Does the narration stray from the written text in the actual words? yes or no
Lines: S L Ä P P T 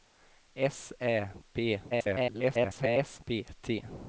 yes